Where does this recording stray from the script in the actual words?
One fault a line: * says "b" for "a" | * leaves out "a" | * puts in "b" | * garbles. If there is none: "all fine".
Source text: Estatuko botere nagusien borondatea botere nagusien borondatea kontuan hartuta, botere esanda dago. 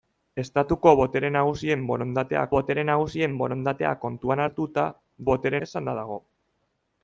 all fine